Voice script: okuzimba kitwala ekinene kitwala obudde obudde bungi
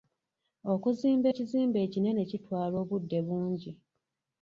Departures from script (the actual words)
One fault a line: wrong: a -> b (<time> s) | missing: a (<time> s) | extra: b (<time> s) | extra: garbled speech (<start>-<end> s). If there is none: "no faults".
wrong: kitwala -> ekizimbe (1.3 s)
missing: obudde (3.2 s)